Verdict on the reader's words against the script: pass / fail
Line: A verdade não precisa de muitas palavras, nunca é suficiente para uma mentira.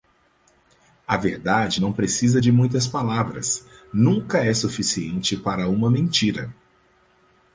pass